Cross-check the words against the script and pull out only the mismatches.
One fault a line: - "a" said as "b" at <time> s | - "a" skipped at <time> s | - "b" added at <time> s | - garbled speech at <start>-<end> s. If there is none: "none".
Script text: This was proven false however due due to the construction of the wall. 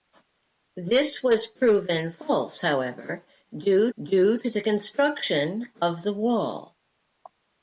none